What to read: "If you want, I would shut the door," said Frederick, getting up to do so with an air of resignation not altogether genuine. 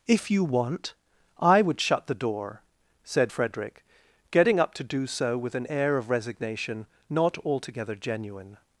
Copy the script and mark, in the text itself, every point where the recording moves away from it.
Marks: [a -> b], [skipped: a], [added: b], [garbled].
"If you want, I would shut the door," said Frederick, getting up to do so with an air of resignation not altogether genuine.